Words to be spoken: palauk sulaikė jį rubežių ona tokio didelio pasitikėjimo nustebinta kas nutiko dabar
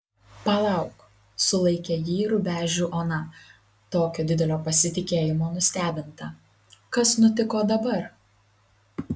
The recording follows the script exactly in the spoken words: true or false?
true